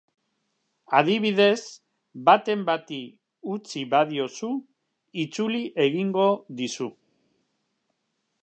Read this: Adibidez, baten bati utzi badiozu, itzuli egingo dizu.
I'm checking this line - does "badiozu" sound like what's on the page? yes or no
yes